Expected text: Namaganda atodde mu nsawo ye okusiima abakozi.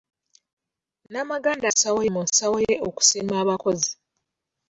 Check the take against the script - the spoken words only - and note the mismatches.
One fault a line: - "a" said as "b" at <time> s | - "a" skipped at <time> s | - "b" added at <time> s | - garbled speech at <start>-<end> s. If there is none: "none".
- "atodde" said as "nsawo" at 1.7 s